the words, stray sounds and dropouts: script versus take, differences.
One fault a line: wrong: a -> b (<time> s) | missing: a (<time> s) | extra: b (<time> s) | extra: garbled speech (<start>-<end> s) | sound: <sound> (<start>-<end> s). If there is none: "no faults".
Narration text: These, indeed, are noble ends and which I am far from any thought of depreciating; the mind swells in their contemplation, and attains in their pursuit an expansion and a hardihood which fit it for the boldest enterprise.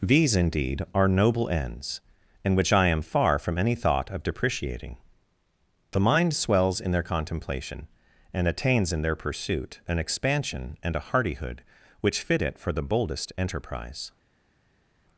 no faults